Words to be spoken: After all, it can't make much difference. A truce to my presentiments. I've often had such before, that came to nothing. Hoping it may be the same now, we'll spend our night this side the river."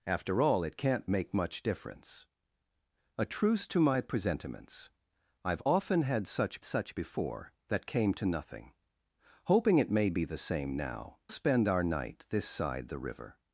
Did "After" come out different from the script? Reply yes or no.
no